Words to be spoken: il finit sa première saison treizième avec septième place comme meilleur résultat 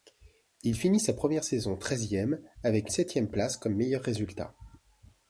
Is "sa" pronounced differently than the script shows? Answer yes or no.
no